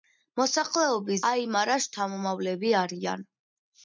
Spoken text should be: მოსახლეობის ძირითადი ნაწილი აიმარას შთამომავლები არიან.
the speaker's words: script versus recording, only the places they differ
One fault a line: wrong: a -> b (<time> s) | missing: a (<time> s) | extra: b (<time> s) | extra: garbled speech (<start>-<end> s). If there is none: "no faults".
missing: ძირითადი ნაწილი (1.2 s)